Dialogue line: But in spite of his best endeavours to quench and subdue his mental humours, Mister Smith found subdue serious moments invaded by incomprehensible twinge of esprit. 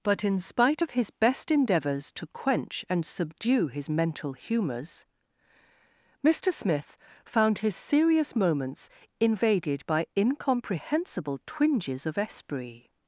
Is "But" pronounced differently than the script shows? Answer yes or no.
no